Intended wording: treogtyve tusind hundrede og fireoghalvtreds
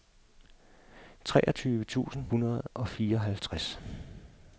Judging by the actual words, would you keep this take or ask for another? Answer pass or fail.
pass